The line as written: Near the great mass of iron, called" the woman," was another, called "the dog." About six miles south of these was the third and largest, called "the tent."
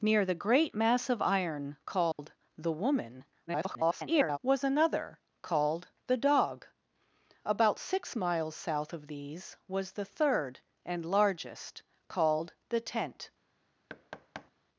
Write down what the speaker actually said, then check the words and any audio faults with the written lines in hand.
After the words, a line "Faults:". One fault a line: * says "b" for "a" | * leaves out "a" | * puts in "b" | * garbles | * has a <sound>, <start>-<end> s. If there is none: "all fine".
Near the great mass of iron, called" the woman," [garbled] was another, called "the dog." About six miles south of these was the third and largest, called "the tent."
Faults:
* has a dropout, 2.1-2.2 s
* garbles
* has a thud, 13.9-14.5 s